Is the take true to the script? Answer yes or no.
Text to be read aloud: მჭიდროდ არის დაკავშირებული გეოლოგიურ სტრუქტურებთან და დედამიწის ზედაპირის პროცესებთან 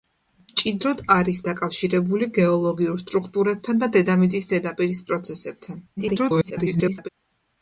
no